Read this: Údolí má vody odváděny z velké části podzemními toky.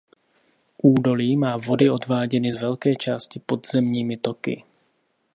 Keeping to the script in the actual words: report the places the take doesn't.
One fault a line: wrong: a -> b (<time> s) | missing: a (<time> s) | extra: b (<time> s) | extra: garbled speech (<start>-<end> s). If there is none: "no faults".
no faults